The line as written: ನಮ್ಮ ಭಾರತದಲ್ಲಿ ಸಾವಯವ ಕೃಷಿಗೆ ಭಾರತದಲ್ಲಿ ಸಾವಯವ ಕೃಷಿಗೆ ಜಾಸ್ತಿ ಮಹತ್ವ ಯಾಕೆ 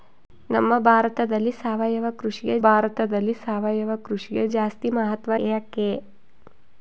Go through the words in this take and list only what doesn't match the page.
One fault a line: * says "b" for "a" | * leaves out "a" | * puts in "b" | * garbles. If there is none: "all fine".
all fine